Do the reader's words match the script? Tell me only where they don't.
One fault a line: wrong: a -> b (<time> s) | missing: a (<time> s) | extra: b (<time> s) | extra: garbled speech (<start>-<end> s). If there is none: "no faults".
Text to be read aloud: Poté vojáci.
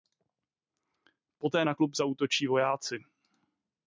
extra: na klub zaútočí (1.6 s)